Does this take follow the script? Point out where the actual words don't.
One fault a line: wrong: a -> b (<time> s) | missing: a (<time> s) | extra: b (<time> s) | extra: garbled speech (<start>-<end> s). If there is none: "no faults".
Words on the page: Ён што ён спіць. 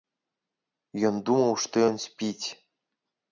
extra: думаў (1.3 s)